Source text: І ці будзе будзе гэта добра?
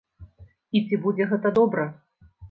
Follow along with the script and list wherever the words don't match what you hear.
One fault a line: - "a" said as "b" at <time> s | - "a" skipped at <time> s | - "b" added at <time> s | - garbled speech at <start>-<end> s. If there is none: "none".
- "будзе" skipped at 1.3 s